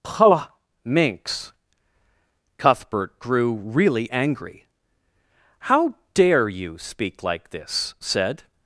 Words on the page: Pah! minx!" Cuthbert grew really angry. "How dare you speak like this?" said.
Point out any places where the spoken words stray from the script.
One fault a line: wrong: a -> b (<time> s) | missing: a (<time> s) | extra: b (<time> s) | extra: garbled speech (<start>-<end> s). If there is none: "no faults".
no faults